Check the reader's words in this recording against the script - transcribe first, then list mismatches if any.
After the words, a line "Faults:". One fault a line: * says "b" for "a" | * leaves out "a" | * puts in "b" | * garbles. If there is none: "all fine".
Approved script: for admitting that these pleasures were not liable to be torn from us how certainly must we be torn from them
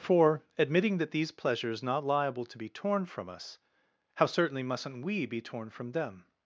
for admitting that these pleasures not liable to be torn from us how certainly mustn't we be torn from them
Faults:
* leaves out "were"
* says "mustn't" for "must"